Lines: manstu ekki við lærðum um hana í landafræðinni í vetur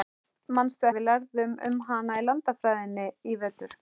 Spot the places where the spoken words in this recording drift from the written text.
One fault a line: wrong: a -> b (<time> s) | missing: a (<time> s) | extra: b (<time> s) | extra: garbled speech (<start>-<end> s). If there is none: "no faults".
missing: ekki (0.9 s)